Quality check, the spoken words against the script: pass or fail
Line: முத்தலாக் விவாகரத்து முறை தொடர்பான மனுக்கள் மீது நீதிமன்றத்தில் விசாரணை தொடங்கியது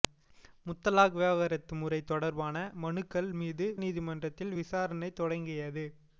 pass